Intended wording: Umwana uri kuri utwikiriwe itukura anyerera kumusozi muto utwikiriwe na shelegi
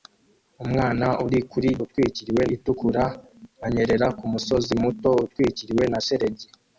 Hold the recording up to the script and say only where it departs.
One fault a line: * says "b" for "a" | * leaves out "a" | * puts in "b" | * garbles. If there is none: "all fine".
all fine